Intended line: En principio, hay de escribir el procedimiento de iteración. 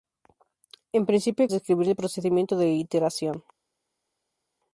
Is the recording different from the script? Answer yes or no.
no